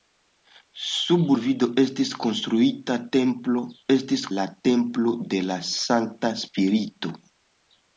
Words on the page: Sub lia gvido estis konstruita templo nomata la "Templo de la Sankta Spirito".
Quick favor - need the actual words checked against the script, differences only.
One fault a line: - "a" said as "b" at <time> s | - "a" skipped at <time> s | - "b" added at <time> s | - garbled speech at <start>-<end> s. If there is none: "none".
- "lia" skipped at 1.3 s
- "nomata" said as "estis" at 3.9 s